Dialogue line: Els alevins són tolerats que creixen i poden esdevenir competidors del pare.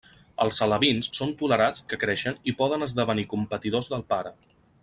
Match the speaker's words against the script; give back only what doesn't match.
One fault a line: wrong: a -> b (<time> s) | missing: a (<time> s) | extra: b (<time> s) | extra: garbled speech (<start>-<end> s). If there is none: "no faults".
no faults